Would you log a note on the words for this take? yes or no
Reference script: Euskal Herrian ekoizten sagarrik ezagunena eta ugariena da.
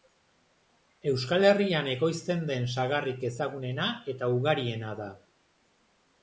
yes